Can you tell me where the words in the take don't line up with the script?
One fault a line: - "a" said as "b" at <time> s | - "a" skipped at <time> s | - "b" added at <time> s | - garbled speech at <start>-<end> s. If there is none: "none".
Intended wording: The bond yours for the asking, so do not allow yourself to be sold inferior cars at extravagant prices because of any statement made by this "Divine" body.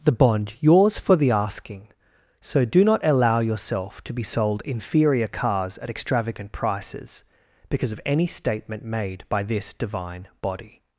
none